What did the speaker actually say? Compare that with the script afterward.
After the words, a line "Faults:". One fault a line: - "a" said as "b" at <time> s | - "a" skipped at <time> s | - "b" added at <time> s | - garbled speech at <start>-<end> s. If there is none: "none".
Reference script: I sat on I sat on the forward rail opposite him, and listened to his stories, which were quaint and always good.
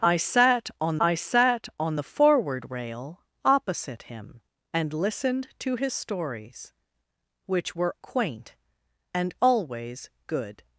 I sat on I sat on the forward rail opposite him, and listened to his stories, which were quaint and always good.
Faults:
none